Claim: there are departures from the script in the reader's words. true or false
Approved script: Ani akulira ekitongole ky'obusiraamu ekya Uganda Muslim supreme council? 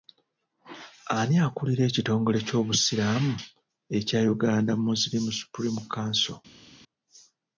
false